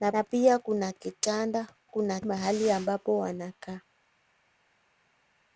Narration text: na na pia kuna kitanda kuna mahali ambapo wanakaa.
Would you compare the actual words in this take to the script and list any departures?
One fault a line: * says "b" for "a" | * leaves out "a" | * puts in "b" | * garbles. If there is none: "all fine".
all fine